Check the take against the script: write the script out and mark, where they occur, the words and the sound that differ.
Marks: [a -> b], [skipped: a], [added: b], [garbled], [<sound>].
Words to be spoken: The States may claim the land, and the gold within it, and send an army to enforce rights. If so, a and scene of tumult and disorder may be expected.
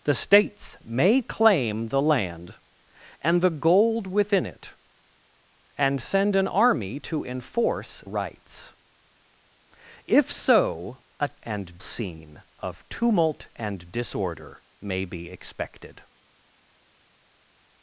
The States may claim the land, and the gold within it, and send an army to enforce rights. If so, a and scene of tumult and disorder may be expected.